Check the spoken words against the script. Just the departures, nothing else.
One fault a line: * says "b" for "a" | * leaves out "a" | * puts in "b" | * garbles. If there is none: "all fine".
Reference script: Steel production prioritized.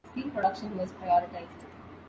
* puts in "was"